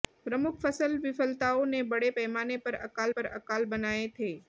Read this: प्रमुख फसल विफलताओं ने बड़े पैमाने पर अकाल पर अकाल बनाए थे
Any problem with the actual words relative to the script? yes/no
no